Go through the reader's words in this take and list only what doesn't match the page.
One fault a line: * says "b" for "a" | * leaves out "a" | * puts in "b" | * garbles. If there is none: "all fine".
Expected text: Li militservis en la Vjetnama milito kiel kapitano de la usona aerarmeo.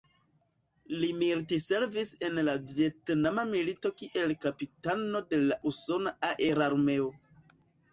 all fine